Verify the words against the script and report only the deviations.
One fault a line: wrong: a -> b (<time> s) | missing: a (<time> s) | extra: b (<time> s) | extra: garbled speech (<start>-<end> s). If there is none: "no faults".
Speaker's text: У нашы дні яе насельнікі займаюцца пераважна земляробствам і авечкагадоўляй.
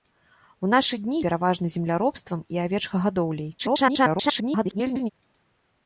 missing: яе насельнікі займаюцца (1.2 s)
extra: garbled speech (3.6-5.1 s)